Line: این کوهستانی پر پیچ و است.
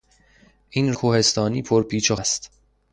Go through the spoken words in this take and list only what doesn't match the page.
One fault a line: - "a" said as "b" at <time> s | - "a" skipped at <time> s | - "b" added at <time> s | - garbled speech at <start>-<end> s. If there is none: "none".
none